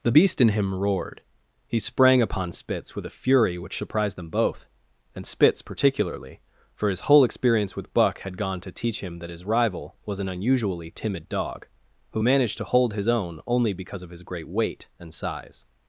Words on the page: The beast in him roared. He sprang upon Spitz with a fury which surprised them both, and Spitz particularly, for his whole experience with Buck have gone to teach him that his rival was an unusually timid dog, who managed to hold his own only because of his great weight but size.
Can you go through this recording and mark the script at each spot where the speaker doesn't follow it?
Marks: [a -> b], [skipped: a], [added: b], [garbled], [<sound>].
The beast in him roared. He sprang upon Spitz with a fury which surprised them both, and Spitz particularly, for his whole experience with Buck [have -> had] gone to teach him that his rival was an unusually timid dog, who managed to hold his own only because of his great weight [but -> and] size.